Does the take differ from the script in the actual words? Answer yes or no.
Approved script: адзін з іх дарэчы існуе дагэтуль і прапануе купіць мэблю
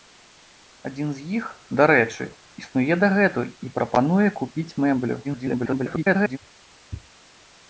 yes